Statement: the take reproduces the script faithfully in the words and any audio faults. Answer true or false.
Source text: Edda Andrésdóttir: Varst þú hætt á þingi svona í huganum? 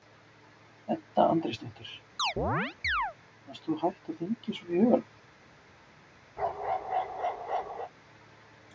false